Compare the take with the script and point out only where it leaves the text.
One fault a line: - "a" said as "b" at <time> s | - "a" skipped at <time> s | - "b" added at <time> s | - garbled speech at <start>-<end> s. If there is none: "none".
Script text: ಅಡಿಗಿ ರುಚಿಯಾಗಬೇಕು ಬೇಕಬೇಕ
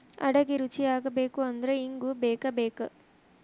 - "ಅಂದ್ರ ಇಂಗು" added at 1.5 s